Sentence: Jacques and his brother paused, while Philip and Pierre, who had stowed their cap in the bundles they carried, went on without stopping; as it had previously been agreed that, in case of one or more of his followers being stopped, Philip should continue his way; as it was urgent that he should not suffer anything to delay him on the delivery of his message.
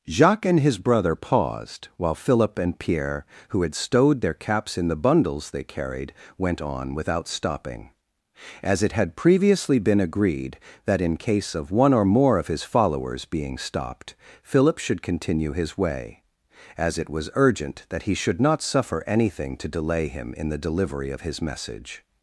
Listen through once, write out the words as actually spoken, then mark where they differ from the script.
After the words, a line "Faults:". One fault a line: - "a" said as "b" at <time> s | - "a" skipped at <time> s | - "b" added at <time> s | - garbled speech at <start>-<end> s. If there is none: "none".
Jacques and his brother paused, while Philip and Pierre, who had stowed their caps in the bundles they carried, went on without stopping; as it had previously been agreed that, in case of one or more of his followers being stopped, Philip should continue his way; as it was urgent that he should not suffer anything to delay him in the delivery of his message.
Faults:
- "cap" said as "caps" at 4.3 s
- "on" said as "in" at 20.3 s